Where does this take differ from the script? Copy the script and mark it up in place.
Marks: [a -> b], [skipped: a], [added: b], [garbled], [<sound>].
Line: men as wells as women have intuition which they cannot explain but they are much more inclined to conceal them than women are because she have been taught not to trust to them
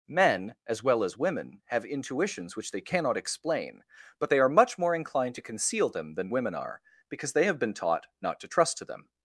men as [wells -> well] as women have [intuition -> intuitions] which they cannot explain but they are much more inclined to conceal them than women are because [she -> they] have been taught not to trust to them